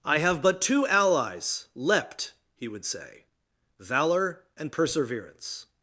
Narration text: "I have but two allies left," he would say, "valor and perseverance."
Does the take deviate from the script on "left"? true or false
true